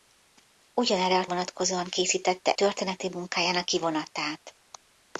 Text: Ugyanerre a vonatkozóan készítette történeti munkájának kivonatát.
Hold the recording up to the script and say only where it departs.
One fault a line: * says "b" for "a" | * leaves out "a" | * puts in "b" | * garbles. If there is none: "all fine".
all fine